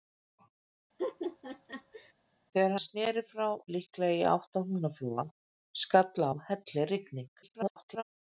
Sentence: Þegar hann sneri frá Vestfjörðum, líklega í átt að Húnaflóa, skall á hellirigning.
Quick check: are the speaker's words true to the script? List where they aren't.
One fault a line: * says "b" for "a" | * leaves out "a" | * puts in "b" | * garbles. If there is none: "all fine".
* leaves out "hann"
* leaves out "Vestfjörðum"
* garbles